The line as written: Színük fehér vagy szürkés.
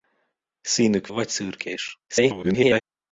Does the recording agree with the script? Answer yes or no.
no